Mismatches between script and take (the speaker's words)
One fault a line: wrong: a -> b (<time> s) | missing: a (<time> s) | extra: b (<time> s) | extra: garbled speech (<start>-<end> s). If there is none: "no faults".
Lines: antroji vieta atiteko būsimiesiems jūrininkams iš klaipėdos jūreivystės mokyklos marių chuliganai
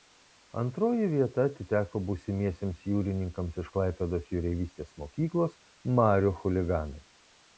no faults